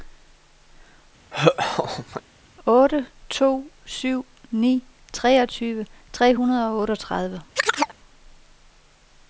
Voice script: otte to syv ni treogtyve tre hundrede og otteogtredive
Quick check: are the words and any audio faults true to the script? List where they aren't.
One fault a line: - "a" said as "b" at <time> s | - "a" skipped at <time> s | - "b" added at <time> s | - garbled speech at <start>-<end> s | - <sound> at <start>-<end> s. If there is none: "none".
- laugh at 1.3-2.2 s
- chirp at 7.6-8.0 s